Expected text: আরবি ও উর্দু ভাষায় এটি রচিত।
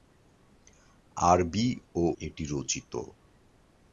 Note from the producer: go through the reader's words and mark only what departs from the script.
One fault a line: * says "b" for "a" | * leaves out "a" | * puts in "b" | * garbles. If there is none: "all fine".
* leaves out "উর্দু ভাষায়"